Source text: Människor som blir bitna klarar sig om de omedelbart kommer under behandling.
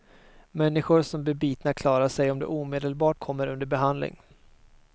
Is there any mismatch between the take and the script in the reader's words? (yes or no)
no